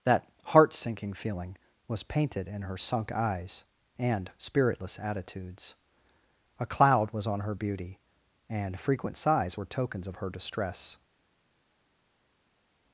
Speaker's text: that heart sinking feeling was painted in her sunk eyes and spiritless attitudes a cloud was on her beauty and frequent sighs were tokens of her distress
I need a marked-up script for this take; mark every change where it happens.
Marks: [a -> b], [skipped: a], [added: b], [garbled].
that heart sinking feeling was painted in her sunk eyes and spiritless attitudes a cloud was on her beauty and frequent sighs were tokens of her distress